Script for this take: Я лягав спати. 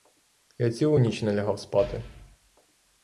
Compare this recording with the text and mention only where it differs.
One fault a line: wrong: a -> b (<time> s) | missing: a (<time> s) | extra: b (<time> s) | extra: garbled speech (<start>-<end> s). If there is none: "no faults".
extra: цілу ніч не (0.7 s)